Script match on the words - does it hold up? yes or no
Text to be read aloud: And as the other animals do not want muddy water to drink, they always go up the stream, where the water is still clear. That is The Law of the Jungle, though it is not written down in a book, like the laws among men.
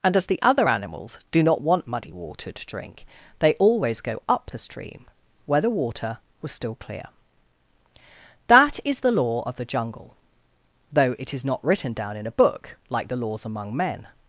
no